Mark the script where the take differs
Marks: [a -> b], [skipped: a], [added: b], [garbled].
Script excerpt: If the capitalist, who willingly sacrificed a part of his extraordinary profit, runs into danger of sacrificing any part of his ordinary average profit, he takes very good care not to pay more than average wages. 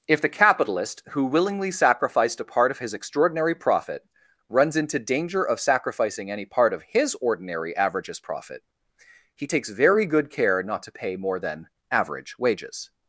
If the capitalist, who willingly sacrificed a part of his extraordinary profit, runs into danger of sacrificing any part of his ordinary [average -> averages] profit, he takes very good care not to pay more than average wages.